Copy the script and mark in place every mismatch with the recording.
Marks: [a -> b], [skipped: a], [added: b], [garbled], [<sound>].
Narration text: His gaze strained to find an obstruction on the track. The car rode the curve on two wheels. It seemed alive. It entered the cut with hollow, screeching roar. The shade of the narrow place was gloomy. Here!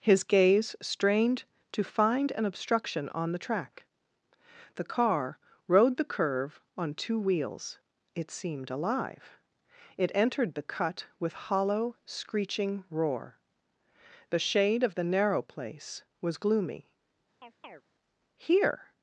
His gaze strained to find an obstruction on the track. The car rode the curve on two wheels. It seemed alive. It entered the cut with hollow, screeching roar. The shade of the narrow place was gloomy. [chirp] Here!